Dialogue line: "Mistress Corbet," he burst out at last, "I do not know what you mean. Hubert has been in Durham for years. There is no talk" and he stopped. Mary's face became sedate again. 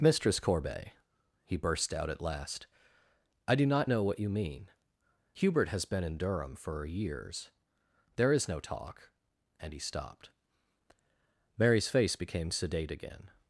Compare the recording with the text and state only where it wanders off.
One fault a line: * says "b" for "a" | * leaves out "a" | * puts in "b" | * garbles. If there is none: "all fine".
all fine